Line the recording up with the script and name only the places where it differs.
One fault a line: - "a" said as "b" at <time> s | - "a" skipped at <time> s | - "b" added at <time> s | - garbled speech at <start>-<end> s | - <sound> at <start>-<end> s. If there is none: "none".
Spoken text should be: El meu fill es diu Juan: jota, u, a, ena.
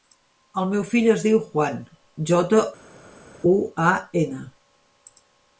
none